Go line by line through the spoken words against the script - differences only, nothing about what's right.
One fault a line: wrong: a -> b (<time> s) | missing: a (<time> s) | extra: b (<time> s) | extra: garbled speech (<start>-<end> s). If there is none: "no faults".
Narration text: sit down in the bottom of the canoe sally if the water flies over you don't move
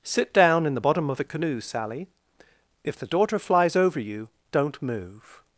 wrong: water -> daughter (3.1 s)